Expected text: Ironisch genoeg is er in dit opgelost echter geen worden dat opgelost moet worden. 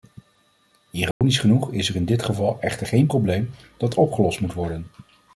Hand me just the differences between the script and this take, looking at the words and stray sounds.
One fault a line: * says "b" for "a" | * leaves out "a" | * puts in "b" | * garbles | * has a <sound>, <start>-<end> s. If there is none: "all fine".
* has a dropout, 1.1-1.2 s
* says "geval" for "opgelost"
* says "probleem" for "worden"